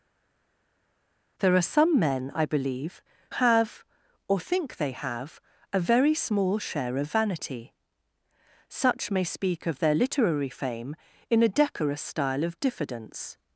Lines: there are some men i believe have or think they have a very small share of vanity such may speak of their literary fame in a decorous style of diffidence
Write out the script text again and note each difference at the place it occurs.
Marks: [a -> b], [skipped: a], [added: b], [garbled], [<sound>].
there are some men i believe have or think they have a very small share of vanity such may speak of their literary fame in a decorous style of diffidence